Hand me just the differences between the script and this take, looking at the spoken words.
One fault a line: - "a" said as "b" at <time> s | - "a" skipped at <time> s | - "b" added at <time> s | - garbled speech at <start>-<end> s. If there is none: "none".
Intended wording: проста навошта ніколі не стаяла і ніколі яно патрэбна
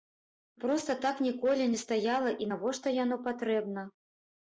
- "навошта" said as "так" at 1.0 s
- "ніколі" said as "навошта" at 2.5 s